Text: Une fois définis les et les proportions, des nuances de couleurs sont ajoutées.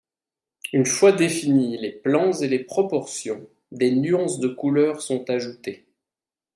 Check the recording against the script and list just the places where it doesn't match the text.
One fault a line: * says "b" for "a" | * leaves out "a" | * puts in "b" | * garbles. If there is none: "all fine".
* puts in "plans"